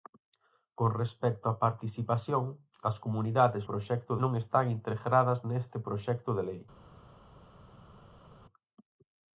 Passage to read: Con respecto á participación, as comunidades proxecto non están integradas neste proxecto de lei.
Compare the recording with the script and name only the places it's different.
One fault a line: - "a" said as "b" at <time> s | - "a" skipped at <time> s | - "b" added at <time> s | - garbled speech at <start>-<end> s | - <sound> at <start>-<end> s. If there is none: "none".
none